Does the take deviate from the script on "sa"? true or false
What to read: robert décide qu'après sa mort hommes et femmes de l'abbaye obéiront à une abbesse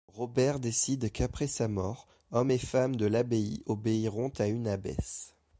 false